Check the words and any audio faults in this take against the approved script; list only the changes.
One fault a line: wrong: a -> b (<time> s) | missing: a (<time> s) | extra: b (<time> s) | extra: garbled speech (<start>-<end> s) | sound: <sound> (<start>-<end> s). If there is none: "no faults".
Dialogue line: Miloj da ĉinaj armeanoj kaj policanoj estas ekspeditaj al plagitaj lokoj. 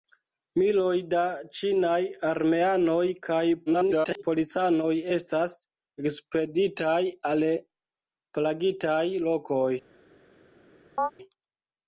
extra: garbled speech (3.7-4.2 s)
sound: chirp (11.0-11.1 s)